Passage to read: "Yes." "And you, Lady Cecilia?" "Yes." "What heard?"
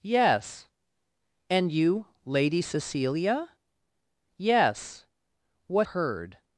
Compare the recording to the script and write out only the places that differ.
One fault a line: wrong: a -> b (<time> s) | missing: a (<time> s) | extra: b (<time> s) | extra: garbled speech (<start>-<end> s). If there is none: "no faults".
no faults